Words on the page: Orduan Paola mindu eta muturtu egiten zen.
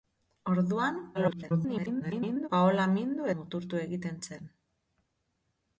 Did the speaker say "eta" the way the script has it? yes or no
no